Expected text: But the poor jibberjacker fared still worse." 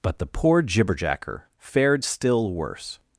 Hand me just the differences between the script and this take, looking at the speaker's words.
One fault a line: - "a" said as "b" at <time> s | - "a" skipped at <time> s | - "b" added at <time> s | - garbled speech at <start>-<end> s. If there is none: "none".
none